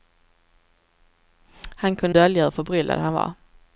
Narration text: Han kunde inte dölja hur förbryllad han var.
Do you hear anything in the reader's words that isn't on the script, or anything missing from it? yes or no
yes